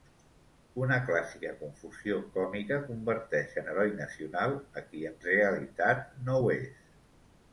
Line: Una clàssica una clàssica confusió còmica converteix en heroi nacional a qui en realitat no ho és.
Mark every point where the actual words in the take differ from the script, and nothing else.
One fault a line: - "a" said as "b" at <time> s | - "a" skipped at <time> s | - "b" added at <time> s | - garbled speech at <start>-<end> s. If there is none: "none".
- "una clàssica" skipped at 1.5 s